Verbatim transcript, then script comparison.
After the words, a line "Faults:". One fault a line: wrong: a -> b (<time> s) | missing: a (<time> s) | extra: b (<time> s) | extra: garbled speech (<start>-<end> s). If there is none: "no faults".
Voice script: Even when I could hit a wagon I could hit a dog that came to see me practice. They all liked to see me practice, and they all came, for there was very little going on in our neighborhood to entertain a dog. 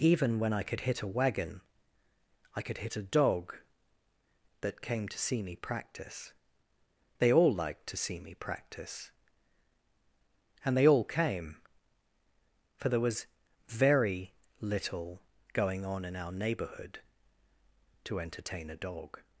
Even when I could hit a wagon I could hit a dog that came to see me practice. They all liked to see me practice, and they all came, for there was very little going on in our neighborhood to entertain a dog.
Faults:
no faults